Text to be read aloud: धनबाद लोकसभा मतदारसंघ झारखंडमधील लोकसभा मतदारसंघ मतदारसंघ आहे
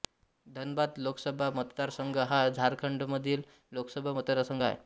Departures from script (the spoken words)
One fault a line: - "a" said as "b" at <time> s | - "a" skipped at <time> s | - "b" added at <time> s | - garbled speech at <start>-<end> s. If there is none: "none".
- "हा" added at 2.3 s
- "मतदारसंघ" skipped at 4.6 s